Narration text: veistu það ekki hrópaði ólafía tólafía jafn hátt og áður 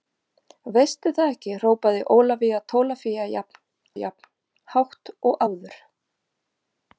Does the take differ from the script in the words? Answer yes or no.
yes